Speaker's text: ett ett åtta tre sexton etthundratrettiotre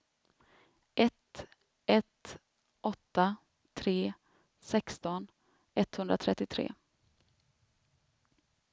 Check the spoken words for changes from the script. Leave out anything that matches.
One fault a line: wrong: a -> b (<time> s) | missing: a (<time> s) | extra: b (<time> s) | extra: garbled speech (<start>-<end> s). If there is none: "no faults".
no faults